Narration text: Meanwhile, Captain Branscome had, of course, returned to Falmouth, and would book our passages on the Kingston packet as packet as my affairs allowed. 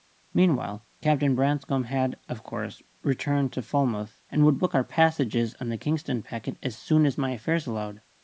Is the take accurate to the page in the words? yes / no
no